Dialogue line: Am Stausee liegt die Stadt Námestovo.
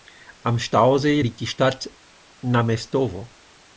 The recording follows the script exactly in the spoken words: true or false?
true